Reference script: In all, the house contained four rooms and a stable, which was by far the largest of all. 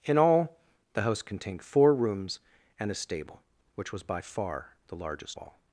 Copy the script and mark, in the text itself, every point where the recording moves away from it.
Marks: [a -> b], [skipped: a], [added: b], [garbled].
In all, the house contained four rooms and a stable, which was by far the largest [skipped: of] all.